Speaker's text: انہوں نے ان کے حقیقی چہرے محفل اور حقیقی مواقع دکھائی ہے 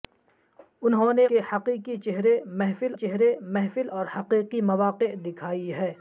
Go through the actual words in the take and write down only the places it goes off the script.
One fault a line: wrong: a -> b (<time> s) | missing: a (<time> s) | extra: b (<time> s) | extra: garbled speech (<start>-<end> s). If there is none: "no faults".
missing: ان (1.2 s)
extra: چہرے محفل (2.9 s)